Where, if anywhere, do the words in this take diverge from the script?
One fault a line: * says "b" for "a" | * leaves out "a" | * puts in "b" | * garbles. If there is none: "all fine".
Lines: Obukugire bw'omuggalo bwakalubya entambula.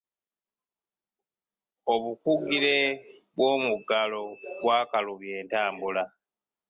all fine